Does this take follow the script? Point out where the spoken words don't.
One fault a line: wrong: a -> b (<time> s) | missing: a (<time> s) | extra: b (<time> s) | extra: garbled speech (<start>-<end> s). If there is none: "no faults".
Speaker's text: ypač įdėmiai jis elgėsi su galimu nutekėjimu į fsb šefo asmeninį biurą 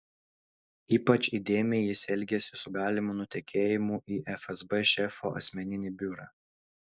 no faults